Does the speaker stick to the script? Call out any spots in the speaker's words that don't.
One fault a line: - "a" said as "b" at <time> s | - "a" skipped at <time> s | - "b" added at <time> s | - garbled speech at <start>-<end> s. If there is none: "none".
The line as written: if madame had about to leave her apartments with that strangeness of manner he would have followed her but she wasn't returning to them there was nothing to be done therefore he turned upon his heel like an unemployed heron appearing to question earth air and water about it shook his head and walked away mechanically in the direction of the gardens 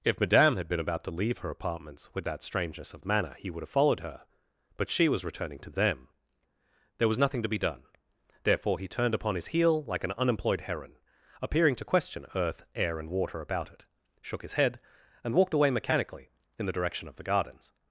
- "been" added at 0.7 s
- "wasn't" said as "was" at 5.1 s